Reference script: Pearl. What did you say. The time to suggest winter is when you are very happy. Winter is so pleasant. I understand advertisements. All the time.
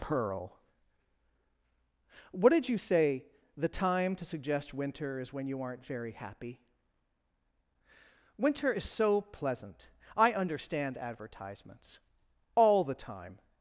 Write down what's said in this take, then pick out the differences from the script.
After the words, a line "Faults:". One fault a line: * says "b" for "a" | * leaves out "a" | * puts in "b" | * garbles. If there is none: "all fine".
Pearl. What did you say. The time to suggest winter is when you aren't very happy. Winter is so pleasant. I understand advertisements. All the time.
Faults:
* says "aren't" for "are"